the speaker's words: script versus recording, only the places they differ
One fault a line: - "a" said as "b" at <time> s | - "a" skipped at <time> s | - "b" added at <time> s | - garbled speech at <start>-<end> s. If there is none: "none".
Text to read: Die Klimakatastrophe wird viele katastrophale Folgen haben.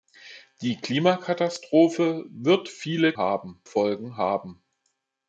- "katastrophale" said as "haben" at 3.2 s